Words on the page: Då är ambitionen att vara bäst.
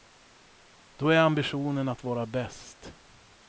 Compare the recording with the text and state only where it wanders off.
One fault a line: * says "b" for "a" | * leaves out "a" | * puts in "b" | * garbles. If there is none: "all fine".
all fine